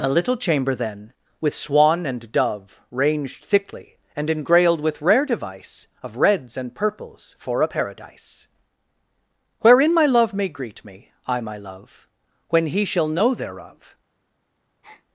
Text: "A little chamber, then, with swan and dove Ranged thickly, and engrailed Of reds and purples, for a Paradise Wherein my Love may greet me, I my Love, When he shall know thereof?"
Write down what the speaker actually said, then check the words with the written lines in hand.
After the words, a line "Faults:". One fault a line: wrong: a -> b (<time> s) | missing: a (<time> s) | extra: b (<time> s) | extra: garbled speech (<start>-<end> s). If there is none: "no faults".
"A little chamber, then, with swan and dove Ranged thickly, and engrailed with rare device Of reds and purples, for a Paradise Wherein my Love may greet me, I my Love, When he shall know thereof?"
Faults:
extra: with rare device (4.8 s)